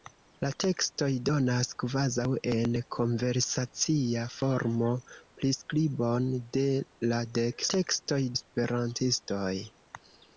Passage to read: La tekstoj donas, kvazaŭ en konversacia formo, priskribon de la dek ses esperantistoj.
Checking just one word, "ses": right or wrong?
wrong